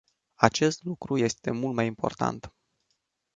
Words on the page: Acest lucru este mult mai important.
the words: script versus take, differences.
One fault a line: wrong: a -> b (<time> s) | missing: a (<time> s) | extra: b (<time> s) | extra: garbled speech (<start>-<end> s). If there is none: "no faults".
no faults